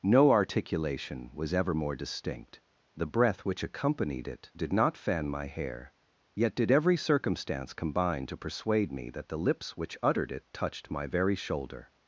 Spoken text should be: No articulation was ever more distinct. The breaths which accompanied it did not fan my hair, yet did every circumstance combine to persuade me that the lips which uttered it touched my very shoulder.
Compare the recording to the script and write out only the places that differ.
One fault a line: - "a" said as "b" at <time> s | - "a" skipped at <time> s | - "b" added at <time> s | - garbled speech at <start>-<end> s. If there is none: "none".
- "breaths" said as "breath" at 3.1 s